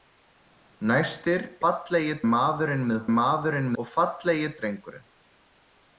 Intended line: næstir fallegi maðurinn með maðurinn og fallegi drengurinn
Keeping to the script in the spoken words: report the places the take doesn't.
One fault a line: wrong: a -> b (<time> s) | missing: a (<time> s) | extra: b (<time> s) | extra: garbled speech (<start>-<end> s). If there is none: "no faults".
no faults